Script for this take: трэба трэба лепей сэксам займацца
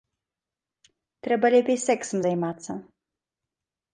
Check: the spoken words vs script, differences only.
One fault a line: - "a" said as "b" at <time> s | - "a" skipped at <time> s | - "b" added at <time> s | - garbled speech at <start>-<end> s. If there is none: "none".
- "трэба" skipped at 1.4 s